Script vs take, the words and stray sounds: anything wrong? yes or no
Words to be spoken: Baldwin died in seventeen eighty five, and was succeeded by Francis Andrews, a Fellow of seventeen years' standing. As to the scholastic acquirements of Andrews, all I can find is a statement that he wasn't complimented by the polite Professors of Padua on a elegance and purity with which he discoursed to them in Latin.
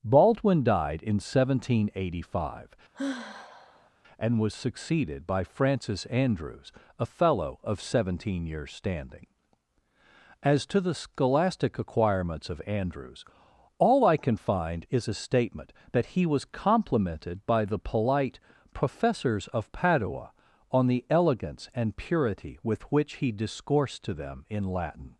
yes